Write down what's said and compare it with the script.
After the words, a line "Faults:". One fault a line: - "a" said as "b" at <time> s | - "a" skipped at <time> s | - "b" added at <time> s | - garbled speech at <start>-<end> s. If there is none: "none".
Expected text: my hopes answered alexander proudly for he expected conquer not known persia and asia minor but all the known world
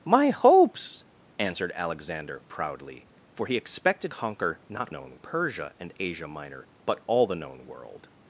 my hopes answered alexander proudly for he expected conquer not known persia and asia minor but all the known world
Faults:
none